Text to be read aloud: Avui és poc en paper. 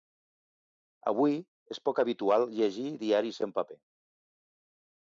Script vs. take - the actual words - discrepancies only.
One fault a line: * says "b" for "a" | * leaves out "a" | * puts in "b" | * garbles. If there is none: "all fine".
* puts in "habitual llegir diaris"